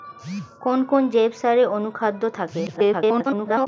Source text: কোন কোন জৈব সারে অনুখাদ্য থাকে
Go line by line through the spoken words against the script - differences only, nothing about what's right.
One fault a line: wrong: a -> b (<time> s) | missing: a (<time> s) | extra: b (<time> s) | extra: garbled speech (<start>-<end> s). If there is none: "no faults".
extra: garbled speech (2.7-3.7 s)